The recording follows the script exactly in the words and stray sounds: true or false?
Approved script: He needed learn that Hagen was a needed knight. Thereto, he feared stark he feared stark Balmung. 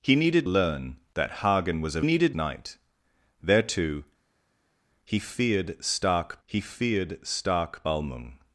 true